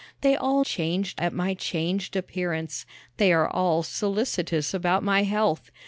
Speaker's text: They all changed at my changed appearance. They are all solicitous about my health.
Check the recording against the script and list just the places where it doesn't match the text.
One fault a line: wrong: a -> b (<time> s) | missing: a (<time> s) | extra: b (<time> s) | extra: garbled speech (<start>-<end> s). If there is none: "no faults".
no faults